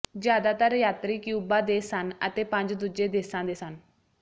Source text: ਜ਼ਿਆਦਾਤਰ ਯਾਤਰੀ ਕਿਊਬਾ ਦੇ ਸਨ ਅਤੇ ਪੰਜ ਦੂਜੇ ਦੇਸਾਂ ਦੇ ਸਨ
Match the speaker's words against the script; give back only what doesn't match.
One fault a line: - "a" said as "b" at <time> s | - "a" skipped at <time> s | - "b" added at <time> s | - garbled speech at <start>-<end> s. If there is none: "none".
none